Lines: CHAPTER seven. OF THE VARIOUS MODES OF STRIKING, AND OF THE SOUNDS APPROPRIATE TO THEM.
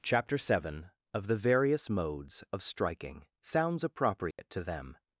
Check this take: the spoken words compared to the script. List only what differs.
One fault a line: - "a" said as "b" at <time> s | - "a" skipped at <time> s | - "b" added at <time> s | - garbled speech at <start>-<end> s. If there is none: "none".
- "AND OF THE" skipped at 3.3 s